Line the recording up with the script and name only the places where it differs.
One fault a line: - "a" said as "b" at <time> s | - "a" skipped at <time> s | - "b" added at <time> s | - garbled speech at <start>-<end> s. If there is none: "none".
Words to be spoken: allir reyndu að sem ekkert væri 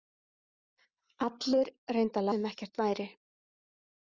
none